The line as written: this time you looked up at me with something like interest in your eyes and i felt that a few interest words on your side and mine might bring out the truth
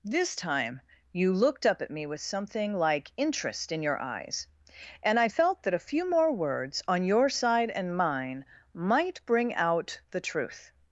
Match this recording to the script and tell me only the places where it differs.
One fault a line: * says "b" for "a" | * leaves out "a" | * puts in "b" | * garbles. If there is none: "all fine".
* says "more" for "interest"